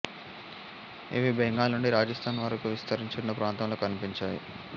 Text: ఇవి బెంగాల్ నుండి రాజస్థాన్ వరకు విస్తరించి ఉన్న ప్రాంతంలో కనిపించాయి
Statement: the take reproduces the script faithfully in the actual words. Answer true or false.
true